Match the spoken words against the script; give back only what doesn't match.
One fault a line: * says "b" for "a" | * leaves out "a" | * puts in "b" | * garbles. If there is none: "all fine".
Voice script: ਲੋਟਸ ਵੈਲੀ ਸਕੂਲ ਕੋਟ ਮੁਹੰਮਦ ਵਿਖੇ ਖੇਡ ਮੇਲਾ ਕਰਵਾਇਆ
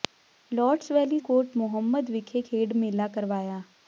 * leaves out "ਸਕੂਲ"